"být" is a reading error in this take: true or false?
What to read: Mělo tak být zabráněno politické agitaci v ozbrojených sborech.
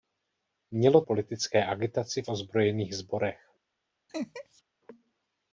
true